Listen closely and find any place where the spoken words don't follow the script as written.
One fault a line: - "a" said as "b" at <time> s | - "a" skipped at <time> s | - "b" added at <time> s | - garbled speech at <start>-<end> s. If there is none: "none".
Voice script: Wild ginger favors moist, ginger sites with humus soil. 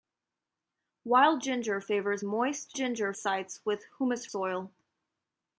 none